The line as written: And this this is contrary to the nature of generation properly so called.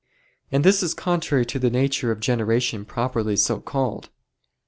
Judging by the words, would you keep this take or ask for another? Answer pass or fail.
fail